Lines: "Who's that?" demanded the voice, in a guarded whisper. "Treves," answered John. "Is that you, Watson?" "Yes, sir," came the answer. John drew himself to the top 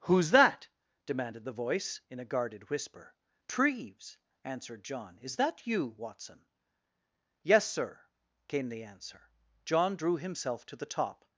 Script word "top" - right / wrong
right